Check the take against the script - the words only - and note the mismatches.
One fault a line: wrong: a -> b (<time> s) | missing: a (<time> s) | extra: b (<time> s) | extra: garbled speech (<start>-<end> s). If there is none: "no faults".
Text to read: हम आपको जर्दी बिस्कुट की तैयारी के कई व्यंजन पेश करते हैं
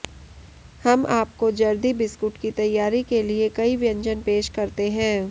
extra: लिए (3.2 s)